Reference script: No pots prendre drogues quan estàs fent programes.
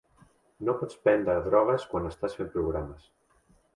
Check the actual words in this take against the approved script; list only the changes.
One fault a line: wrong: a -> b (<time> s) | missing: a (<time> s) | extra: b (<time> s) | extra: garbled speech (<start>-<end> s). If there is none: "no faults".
no faults